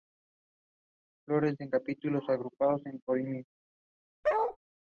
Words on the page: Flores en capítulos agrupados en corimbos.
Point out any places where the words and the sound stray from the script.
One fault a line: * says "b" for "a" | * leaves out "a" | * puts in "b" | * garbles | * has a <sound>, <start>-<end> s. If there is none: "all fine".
* has a bark, 4.2-4.6 s